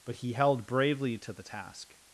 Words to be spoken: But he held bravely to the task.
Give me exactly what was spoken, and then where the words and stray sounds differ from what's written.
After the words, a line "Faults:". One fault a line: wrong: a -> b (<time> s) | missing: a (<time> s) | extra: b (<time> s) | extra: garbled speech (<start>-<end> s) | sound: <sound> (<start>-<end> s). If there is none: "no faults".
But he held bravely to the task.
Faults:
no faults